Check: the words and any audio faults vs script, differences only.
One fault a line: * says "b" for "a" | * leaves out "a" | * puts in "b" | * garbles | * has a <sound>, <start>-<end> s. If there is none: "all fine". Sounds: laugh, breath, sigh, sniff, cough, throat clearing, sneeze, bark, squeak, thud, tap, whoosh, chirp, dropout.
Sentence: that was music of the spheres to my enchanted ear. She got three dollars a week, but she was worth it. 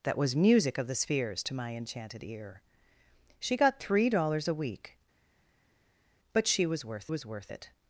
* puts in "was worth"